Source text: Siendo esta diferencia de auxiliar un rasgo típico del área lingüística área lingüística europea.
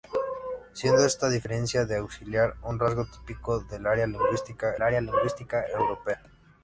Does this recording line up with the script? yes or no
yes